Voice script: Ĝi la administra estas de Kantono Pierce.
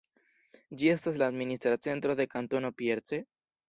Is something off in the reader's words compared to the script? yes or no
yes